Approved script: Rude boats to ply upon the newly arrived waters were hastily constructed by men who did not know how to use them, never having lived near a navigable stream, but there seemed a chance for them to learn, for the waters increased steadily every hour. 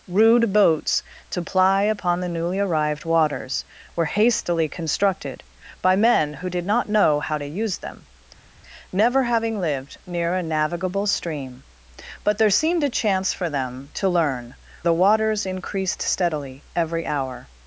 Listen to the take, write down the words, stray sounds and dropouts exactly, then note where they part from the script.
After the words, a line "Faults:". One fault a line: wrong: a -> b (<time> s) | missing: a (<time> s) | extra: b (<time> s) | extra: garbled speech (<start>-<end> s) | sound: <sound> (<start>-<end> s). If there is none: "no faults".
Rude boats to ply upon the newly arrived waters were hastily constructed by men who did not know how to use them, never having lived near a navigable stream, but there seemed a chance for them to learn, the waters increased steadily every hour.
Faults:
missing: for (14.5 s)